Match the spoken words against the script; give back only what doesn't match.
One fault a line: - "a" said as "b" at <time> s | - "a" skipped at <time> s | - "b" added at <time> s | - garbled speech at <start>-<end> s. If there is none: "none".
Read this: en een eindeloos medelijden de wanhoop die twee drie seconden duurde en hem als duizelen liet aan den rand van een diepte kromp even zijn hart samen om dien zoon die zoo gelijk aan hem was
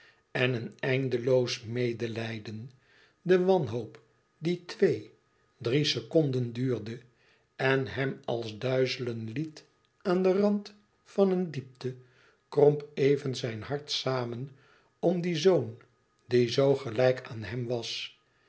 none